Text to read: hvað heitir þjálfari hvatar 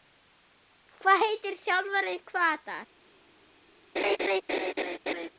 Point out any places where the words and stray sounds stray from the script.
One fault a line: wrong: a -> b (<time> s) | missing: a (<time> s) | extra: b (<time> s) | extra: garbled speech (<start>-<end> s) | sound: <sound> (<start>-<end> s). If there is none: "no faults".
sound: laugh (4.0-5.3 s)